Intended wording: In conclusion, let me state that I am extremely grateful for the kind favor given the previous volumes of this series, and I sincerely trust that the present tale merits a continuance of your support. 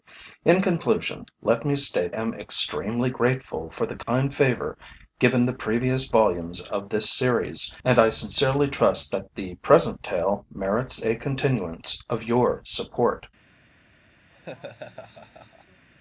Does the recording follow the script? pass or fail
fail